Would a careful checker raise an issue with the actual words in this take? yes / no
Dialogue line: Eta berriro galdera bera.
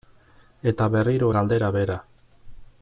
no